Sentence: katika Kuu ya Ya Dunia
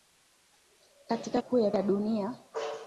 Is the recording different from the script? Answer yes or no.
no